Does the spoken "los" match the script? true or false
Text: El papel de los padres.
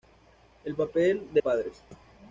false